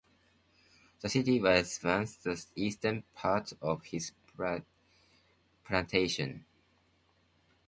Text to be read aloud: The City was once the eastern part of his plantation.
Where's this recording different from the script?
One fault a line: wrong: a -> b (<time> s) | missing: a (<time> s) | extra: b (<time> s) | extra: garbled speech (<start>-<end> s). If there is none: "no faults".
no faults